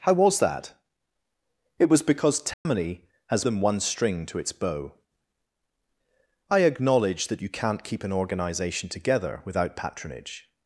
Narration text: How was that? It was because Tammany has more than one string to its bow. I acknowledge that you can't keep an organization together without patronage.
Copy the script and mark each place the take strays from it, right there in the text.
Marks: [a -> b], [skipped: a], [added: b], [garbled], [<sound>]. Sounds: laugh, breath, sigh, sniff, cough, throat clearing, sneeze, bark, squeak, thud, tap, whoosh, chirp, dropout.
How was that? It was because Tammany [dropout] has [skipped: more] than one string to its bow. I acknowledge that you can't keep an organization together without patronage.